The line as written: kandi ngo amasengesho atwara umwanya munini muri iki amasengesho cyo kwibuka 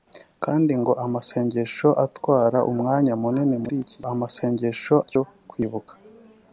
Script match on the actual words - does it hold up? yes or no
yes